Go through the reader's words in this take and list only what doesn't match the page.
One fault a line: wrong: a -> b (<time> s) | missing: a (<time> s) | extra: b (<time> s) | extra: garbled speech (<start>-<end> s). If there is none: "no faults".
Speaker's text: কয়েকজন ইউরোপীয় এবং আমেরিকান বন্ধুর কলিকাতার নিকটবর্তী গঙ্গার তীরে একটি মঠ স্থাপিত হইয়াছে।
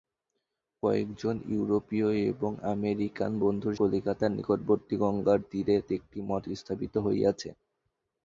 no faults